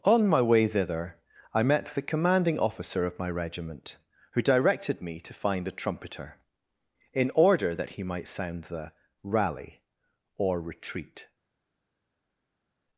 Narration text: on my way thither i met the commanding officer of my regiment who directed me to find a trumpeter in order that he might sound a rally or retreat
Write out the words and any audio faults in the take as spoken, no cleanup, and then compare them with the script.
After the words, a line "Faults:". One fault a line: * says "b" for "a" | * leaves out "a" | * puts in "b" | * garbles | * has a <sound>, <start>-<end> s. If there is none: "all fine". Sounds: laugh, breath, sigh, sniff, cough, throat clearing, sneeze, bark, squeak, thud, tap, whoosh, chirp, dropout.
on my way thither i met the commanding officer of my regiment who directed me to find a trumpeter in order that he might sound the rally or retreat
Faults:
* says "the" for "a"